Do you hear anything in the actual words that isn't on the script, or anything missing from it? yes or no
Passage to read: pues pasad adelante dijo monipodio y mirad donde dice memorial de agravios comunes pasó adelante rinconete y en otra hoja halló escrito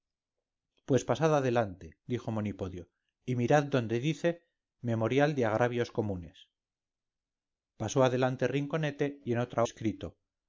yes